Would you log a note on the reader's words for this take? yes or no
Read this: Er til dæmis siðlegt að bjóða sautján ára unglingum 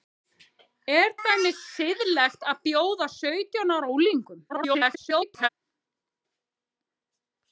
yes